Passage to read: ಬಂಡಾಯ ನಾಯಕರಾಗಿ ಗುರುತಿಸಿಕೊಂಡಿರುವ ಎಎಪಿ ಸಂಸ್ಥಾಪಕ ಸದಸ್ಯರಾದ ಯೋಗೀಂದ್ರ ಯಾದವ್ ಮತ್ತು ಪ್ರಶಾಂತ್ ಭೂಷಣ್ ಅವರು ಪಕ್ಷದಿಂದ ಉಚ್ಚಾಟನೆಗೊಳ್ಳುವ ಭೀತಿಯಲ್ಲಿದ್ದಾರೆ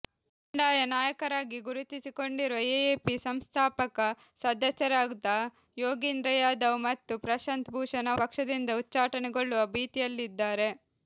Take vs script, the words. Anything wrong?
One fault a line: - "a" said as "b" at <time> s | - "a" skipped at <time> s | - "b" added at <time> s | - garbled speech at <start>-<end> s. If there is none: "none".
- "ಅವರು" skipped at 8.1 s